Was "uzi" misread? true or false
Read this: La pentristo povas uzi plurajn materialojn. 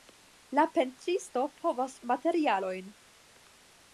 true